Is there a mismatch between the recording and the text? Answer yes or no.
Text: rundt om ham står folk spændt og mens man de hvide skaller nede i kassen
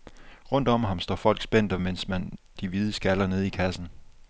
no